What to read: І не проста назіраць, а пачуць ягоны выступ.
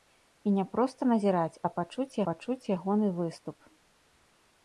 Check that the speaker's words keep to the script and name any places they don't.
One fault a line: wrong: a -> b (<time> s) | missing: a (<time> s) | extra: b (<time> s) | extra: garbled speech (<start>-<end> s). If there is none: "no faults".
extra: пачуць (2.2 s)